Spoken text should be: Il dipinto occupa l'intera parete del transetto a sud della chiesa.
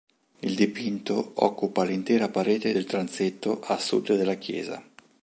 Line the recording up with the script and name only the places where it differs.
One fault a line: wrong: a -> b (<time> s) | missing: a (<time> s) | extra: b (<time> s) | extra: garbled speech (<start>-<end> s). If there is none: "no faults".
no faults